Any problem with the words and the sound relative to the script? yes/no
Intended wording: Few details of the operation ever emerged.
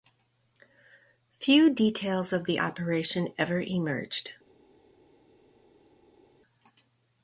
no